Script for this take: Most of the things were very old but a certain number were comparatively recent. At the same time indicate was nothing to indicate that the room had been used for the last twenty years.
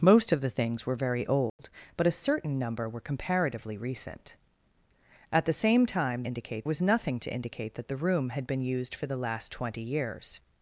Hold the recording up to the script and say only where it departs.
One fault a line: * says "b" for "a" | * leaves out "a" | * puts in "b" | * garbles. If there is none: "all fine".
all fine